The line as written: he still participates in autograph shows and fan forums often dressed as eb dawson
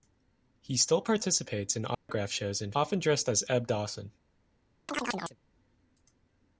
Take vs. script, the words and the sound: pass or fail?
fail